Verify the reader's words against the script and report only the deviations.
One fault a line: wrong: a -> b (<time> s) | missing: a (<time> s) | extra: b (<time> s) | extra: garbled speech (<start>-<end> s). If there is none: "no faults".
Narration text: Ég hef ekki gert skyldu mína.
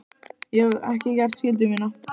no faults